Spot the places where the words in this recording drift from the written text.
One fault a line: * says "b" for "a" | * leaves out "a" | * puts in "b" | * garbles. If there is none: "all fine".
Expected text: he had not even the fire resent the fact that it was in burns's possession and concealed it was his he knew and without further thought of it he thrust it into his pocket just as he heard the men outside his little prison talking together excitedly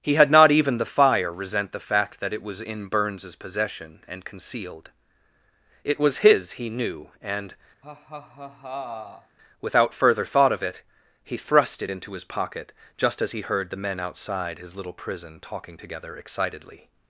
all fine